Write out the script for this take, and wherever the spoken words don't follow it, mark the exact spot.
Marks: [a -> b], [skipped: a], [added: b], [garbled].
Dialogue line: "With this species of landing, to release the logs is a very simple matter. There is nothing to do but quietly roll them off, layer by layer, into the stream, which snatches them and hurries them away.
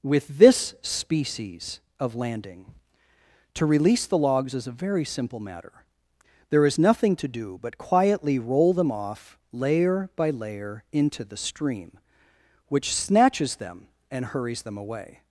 "With this species of landing, to release the logs is a very simple matter. There is nothing to do but quietly roll them off, layer by layer, into the stream, which snatches them and hurries them away.